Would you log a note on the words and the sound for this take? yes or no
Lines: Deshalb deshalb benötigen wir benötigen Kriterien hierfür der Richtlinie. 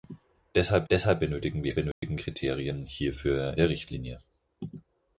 yes